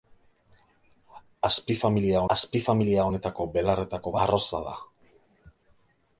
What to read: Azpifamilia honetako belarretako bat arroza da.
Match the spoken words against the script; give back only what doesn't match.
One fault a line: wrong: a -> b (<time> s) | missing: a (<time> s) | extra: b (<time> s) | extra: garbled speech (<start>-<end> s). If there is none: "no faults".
extra: azpifamilia (2.3 s)
missing: bat (4.1 s)